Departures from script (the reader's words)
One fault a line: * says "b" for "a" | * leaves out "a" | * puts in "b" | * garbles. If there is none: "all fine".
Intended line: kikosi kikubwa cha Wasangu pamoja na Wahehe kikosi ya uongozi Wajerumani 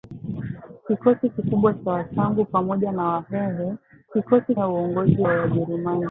all fine